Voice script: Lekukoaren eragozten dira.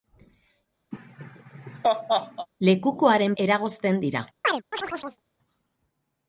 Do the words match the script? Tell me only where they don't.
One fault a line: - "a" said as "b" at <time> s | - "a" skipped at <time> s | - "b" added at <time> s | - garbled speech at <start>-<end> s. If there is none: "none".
none